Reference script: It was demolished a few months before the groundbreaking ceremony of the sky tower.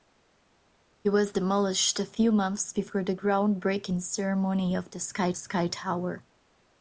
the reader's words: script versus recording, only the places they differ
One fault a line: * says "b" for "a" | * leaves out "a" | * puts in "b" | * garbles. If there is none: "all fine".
* puts in "sky"